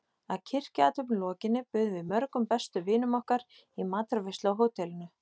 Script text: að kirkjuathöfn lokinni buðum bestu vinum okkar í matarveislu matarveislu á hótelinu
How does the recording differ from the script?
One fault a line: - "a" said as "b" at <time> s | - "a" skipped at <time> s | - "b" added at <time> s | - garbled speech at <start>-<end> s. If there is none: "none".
- "við mörgum" added at 2.0 s
- "matarveislu" skipped at 4.5 s